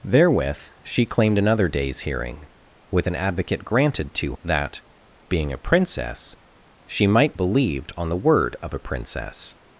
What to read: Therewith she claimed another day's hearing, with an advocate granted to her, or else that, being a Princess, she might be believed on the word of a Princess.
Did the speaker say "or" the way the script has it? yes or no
no